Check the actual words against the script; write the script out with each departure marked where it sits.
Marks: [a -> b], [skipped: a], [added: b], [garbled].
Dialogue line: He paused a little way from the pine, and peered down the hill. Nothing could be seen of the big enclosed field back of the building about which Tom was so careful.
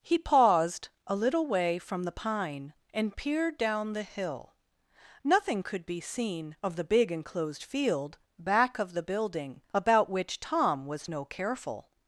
He paused a little way from the pine, and peered down the hill. Nothing could be seen of the big enclosed field back of the building about which Tom was [so -> no] careful.